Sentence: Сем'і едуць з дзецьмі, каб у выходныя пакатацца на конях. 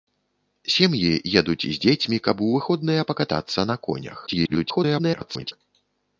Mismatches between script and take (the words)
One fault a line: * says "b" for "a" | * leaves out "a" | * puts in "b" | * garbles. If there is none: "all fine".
* garbles